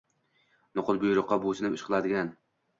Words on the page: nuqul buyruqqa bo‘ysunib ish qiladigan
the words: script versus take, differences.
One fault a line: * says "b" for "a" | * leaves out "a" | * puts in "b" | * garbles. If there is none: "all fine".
all fine